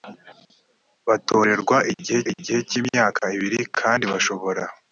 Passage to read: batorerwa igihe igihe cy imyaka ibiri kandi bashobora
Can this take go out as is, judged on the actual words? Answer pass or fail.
pass